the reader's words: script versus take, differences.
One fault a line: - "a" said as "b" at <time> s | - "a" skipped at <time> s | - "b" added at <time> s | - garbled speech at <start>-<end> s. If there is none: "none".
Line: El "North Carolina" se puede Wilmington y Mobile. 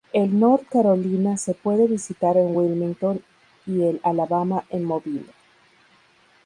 - "visitar en" added at 1.9 s
- "el Alabama en" added at 3.8 s